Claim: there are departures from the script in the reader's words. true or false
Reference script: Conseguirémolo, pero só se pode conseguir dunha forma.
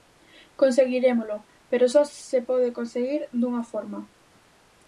false